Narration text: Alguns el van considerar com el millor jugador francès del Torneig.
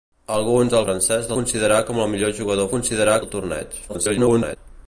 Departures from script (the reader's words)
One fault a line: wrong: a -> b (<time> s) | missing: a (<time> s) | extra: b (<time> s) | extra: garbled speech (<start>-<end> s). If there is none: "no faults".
wrong: van -> francès (0.9 s)
wrong: francès -> considerar (2.7 s)
extra: garbled speech (3.9-4.6 s)